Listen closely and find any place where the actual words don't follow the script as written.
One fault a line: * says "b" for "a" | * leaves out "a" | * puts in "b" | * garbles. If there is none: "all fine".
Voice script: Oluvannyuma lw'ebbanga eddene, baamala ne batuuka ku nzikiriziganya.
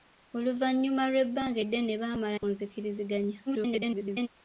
* leaves out "ne batuuka"
* garbles